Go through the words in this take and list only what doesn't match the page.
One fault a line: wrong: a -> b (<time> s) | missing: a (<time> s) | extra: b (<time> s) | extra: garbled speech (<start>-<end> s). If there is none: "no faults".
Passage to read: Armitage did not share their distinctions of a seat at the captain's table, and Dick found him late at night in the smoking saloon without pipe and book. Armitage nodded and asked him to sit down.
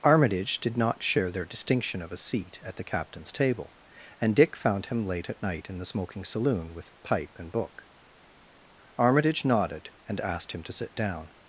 wrong: distinctions -> distinction (1.4 s)
wrong: without -> with (6.7 s)